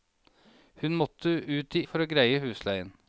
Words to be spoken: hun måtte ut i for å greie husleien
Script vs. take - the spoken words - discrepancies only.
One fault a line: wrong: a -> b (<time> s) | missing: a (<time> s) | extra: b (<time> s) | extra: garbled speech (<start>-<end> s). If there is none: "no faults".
no faults